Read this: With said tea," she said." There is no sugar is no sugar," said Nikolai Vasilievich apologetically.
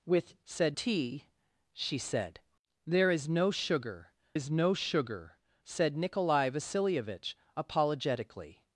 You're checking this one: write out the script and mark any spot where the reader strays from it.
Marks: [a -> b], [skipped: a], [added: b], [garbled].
With said tea," she said." There is no sugar is no sugar," said Nikolai Vasilievich apologetically.